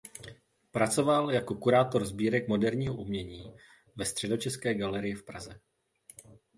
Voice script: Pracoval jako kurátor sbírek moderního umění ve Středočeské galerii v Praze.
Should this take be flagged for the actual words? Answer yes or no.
no